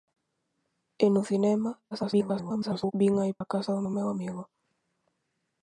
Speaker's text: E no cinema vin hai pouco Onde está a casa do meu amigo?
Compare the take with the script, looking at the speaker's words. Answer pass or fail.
fail